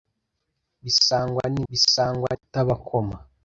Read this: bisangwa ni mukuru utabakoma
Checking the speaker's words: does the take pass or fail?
fail